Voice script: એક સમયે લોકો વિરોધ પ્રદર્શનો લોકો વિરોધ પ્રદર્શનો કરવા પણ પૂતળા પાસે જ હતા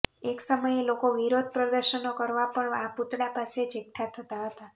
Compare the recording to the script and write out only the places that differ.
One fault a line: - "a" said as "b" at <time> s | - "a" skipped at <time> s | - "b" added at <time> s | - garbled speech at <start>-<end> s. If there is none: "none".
- "લોકો વિરોધ પ્રદર્શનો" skipped at 2.1 s
- "આ" added at 2.8 s
- "એકઠા થતા" added at 3.8 s